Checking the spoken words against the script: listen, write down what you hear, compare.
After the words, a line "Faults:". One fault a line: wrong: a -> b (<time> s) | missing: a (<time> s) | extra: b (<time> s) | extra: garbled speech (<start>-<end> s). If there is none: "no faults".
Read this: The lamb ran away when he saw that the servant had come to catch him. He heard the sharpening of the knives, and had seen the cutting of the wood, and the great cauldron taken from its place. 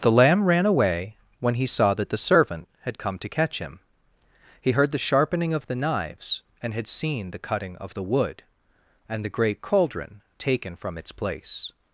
The lamb ran away when he saw that the servant had come to catch him. He heard the sharpening of the knives, and had seen the cutting of the wood, and the great cauldron taken from its place.
Faults:
no faults